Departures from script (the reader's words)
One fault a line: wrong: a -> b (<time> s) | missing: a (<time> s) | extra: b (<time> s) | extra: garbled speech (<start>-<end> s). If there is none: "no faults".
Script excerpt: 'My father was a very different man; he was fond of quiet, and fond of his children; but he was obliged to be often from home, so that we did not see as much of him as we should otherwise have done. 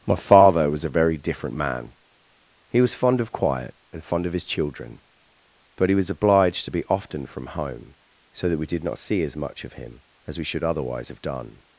no faults